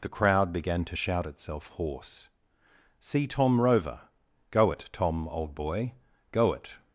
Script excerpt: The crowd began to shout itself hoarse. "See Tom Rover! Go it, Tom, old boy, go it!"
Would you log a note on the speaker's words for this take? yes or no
no